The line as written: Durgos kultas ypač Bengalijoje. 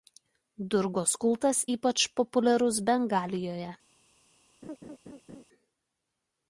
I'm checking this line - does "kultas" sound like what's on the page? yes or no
yes